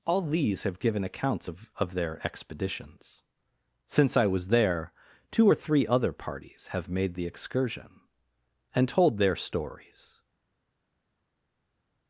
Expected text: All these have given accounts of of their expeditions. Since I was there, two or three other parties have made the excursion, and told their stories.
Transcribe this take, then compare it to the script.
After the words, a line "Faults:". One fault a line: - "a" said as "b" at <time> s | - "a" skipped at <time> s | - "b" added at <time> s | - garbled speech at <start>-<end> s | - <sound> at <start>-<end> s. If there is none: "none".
All these have given accounts of of their expeditions. Since I was there, two or three other parties have made the excursion, and told their stories.
Faults:
none